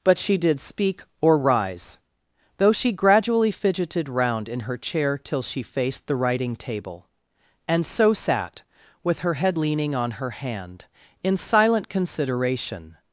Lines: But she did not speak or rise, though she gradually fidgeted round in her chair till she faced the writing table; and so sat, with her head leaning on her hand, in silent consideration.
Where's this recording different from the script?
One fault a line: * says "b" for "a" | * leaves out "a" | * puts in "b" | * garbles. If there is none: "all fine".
* leaves out "not"